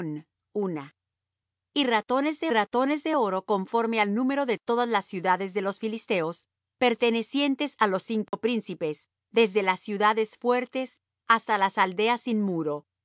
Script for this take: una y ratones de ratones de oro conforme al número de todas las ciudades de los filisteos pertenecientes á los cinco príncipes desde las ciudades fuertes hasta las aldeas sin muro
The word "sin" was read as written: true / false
true